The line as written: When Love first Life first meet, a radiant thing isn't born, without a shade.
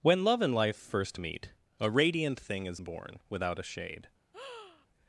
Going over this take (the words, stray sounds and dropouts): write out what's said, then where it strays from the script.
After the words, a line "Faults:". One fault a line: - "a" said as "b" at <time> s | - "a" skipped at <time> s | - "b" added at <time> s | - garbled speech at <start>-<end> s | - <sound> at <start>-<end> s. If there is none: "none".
When Love and Life first meet, a radiant thing is born, without a shade.
Faults:
- "first" said as "and" at 0.4 s
- "isn't" said as "is" at 2.7 s
- breath at 4.3-4.9 s